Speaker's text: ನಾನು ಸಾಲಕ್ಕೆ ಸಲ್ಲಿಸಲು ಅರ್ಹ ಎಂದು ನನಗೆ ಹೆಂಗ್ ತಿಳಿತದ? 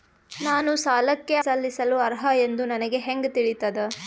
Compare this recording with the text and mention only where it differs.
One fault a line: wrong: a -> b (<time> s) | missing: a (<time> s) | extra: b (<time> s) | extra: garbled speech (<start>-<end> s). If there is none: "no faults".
no faults